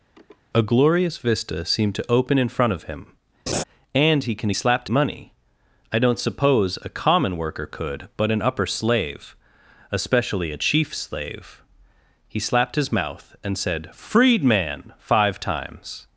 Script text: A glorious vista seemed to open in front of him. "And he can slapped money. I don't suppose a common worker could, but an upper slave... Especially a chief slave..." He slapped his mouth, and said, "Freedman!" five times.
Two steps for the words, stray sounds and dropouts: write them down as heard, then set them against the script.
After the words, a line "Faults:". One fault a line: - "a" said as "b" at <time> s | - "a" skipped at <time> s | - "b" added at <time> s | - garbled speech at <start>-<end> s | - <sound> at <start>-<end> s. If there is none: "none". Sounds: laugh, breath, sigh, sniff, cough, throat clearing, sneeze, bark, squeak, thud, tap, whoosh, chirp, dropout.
A glorious vista seemed to open in front of him. "And he can slapped money. I don't suppose a common worker could, but an upper slave... Especially a chief slave..." He slapped his mouth, and said, "Freedman!" five times.
Faults:
- sniff at 0.1-0.4 s
- laugh at 3.5-3.6 s